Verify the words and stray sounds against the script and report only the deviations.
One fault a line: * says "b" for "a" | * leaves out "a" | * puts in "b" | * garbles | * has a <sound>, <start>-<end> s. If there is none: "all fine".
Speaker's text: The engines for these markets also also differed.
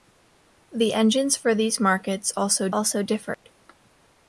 * has a dropout, 3.3-3.4 s